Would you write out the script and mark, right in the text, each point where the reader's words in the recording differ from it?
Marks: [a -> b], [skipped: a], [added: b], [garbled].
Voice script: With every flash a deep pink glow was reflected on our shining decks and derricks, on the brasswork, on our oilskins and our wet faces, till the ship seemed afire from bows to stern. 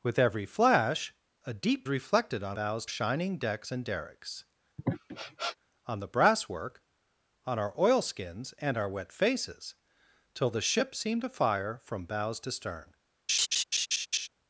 With every flash a deep [skipped: pink glow was] reflected on [our -> bows] shining decks and derricks, on the brasswork, on our oilskins and our wet faces, till the ship seemed afire from bows to stern.